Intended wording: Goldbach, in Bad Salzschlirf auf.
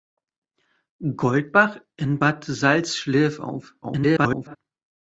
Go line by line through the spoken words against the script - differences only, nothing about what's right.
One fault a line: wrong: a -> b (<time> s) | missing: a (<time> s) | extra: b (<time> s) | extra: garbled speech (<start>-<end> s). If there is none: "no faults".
extra: garbled speech (3.8-4.6 s)